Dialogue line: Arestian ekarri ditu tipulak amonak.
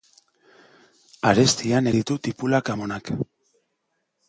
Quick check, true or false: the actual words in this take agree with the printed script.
false